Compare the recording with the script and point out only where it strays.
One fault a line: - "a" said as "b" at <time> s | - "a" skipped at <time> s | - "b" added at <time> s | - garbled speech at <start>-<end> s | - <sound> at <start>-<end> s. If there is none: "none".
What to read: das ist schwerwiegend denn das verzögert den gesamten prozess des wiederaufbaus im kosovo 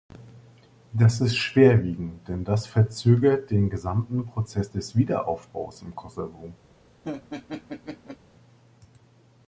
- laugh at 7.0-8.2 s